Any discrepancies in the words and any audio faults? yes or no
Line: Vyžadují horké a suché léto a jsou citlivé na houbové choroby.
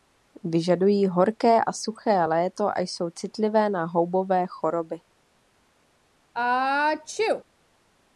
yes